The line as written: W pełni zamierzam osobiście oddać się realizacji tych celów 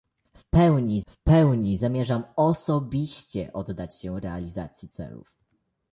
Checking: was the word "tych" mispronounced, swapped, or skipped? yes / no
yes